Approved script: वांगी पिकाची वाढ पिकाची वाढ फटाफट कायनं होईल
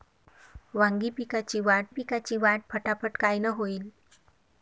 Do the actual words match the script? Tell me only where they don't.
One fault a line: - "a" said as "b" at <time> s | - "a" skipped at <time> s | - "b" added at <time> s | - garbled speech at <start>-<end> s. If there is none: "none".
none